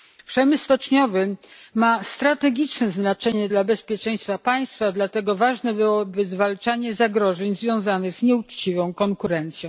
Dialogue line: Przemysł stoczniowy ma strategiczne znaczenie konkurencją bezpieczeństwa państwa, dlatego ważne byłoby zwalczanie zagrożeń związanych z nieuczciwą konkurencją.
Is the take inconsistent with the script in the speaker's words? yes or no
yes